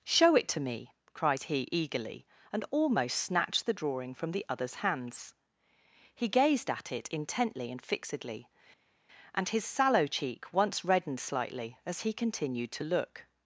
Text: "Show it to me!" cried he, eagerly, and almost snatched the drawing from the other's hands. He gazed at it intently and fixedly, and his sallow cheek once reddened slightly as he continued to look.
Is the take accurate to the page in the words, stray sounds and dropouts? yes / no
yes